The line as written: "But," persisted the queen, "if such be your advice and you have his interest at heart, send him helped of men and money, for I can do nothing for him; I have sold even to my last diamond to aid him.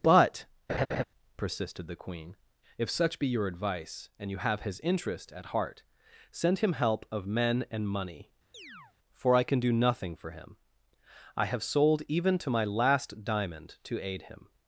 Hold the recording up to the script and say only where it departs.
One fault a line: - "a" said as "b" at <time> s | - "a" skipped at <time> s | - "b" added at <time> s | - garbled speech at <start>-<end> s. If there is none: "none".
- "helped" said as "help" at 6.7 s